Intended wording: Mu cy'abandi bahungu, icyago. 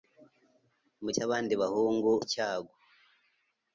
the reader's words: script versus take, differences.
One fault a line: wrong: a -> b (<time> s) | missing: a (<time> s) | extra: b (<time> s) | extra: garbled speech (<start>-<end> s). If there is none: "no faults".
no faults